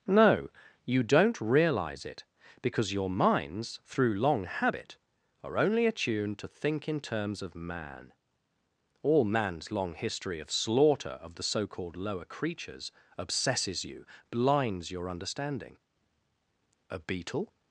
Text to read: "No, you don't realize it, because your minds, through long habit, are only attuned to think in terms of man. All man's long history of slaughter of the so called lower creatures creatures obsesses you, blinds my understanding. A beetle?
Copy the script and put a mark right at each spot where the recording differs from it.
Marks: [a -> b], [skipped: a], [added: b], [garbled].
"No, you don't realize it, because your minds, through long habit, are only attuned to think in terms of man. All man's long history of slaughter of the so called lower creatures [skipped: creatures] obsesses you, blinds [my -> your] understanding. A beetle?